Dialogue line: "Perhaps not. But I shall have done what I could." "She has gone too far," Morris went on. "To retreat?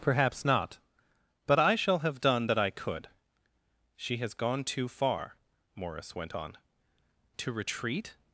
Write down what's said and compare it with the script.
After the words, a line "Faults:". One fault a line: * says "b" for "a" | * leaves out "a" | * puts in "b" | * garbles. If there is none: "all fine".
"Perhaps not. But I shall have done that I could." "She has gone too far," Morris went on. "To retreat?
Faults:
* says "that" for "what"